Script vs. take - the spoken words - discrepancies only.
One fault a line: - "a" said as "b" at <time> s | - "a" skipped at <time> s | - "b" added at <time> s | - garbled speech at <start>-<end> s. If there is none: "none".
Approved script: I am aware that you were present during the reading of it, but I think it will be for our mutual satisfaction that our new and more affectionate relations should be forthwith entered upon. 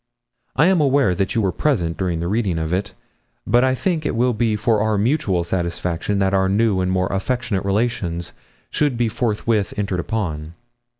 none